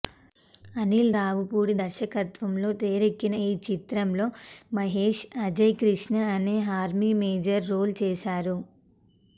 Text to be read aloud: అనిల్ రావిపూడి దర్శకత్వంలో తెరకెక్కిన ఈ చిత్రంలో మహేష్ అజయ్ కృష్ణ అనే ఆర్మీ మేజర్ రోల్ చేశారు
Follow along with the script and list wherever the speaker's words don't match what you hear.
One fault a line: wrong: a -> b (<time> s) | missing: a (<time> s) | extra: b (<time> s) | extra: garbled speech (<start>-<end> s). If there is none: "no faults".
no faults